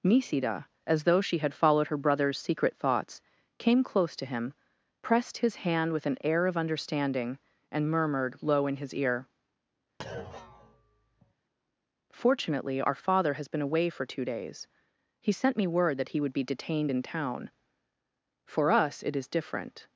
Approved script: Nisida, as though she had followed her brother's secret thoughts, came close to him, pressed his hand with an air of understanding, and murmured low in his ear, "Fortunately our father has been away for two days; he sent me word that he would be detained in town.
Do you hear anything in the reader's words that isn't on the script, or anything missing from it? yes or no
yes